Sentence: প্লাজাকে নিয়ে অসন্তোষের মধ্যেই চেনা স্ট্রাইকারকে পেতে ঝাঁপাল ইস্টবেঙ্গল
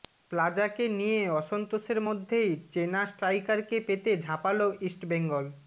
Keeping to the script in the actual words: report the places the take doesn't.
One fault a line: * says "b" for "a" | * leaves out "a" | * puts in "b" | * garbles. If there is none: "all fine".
all fine